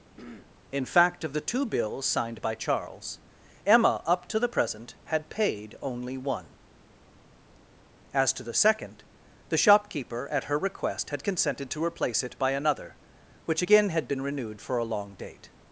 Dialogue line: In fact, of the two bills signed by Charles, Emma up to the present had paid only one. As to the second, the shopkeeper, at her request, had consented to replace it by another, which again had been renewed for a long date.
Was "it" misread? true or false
false